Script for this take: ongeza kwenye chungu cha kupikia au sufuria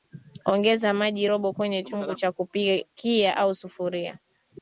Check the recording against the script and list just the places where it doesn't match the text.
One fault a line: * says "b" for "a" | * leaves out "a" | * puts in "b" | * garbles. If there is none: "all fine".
* puts in "maji robo"